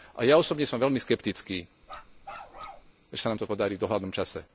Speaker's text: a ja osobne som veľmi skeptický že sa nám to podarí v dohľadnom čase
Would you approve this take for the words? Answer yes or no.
yes